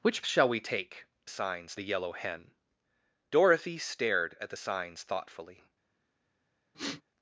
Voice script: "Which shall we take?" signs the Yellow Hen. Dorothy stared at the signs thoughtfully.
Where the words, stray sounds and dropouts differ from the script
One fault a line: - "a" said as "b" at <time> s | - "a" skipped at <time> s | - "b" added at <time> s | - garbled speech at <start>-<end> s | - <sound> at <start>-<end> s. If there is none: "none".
- sniff at 6.7-7.0 s